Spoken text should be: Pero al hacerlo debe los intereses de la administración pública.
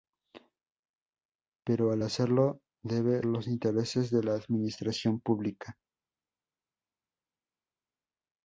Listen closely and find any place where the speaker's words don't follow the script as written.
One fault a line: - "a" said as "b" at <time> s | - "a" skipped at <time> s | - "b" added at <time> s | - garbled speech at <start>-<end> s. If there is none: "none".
none